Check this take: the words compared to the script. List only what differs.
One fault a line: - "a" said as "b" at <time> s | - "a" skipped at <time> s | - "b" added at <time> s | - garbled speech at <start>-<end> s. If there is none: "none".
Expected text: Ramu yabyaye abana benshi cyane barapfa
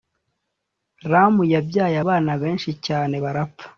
none